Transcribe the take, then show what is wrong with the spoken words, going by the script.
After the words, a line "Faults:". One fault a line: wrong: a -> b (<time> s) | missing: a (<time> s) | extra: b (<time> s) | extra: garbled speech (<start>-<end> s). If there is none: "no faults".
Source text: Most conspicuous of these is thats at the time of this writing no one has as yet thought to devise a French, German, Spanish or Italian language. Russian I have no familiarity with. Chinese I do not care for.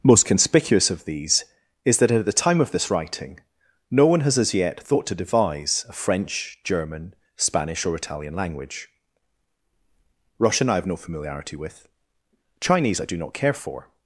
Most conspicuous of these is that at the time of this writing no one has as yet thought to devise a French, German, Spanish or Italian language. Russian I have no familiarity with. Chinese I do not care for.
Faults:
wrong: thats -> that (2.0 s)